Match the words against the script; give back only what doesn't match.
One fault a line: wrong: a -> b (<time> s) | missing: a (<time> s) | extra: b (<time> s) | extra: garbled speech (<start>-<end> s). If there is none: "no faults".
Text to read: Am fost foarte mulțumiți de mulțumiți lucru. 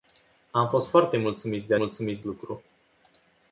no faults